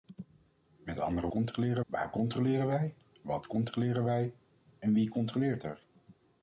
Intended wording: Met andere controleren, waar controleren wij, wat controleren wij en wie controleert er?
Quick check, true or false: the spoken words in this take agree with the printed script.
true